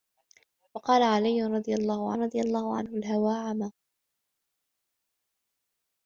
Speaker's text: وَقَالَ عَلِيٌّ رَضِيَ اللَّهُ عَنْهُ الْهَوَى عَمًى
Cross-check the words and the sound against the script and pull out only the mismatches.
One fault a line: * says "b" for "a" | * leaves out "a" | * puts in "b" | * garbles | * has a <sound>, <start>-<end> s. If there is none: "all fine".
* puts in "رَضِيَ اللَّهُ"